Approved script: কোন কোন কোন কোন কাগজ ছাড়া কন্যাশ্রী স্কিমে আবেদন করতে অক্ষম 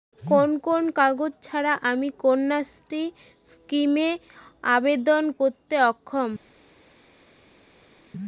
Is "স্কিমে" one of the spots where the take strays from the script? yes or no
no